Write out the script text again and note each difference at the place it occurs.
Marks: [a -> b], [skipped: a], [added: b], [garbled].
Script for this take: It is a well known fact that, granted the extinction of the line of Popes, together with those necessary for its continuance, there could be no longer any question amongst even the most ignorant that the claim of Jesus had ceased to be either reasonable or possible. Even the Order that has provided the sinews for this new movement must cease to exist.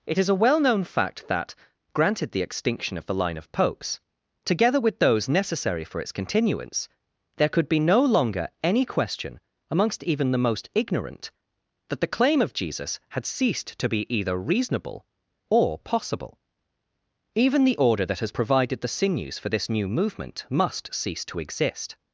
It is a well known fact that, granted the extinction of the line of Popes, together with those necessary for its continuance, there could be no longer any question amongst even the most ignorant that the claim of Jesus had ceased to be either reasonable or possible. Even the Order that has provided the sinews for this new movement must cease to exist.